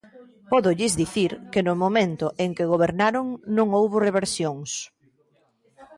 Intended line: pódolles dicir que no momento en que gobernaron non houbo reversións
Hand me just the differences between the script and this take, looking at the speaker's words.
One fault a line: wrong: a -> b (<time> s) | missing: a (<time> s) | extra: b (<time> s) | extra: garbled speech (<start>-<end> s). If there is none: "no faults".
no faults